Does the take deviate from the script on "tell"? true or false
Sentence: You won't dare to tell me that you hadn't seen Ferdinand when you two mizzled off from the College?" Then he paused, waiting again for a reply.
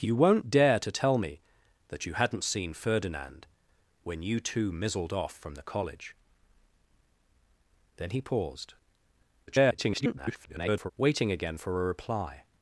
false